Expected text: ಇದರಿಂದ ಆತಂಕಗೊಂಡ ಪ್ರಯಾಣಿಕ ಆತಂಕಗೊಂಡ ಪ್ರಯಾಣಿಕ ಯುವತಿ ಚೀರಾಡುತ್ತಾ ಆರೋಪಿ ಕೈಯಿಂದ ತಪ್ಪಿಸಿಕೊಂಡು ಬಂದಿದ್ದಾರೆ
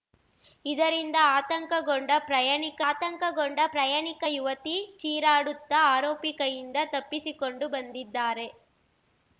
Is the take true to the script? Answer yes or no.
yes